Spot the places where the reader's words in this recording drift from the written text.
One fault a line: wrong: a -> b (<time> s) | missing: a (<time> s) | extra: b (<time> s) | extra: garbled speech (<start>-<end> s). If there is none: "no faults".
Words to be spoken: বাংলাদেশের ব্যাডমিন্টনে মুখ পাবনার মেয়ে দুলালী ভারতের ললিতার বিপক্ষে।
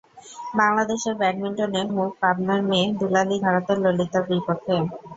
no faults